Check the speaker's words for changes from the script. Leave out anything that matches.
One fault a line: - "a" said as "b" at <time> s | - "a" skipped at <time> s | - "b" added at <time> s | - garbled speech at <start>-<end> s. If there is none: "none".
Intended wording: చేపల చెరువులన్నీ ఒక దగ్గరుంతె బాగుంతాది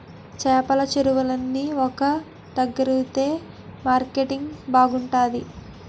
- "మార్కెటింగ్" added at 3.9 s